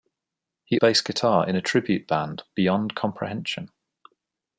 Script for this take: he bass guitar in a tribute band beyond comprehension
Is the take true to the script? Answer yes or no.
yes